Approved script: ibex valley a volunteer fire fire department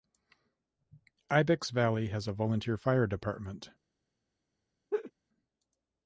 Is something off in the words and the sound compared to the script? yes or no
yes